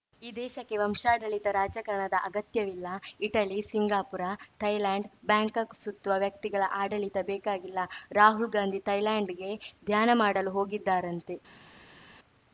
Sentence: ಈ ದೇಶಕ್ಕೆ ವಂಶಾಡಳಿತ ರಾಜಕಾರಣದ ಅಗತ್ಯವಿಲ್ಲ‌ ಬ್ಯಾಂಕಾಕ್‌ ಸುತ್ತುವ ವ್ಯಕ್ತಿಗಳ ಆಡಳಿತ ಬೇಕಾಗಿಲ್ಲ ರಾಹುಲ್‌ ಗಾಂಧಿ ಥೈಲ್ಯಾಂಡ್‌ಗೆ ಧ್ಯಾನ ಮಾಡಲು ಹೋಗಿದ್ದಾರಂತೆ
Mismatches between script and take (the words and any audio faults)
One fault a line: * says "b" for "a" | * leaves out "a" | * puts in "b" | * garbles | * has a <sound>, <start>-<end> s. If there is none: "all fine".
* puts in "ಇಟಲಿ ಸಿಂಗಾಪುರ ಥೈಲ್ಯಾಂಡ್"